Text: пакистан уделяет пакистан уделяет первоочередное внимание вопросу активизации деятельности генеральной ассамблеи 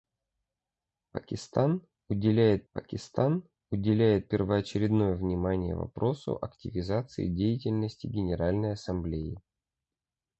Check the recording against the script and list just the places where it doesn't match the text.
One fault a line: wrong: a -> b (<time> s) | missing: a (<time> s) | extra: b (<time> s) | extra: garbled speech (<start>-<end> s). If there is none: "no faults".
no faults